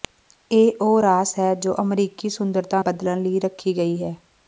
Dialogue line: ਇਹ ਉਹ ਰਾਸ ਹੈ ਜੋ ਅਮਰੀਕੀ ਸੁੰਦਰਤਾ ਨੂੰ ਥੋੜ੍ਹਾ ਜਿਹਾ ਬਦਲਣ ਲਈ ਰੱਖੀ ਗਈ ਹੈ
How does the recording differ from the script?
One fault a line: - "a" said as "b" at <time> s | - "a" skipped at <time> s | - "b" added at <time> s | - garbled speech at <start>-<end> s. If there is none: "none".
- "ਨੂੰ ਥੋੜ੍ਹਾ ਜਿਹਾ" skipped at 2.8 s